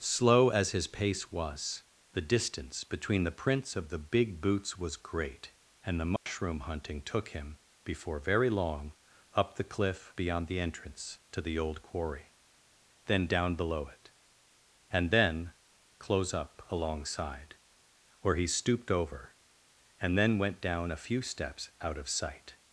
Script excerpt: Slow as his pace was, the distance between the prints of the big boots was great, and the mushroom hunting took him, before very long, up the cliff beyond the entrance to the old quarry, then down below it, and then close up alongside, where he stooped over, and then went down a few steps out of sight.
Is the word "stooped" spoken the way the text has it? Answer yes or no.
yes